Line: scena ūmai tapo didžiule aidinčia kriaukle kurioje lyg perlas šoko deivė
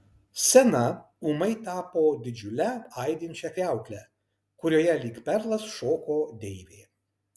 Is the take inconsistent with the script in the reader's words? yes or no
no